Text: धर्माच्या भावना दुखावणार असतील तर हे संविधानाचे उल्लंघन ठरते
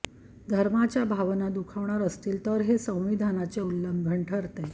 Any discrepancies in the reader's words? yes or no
no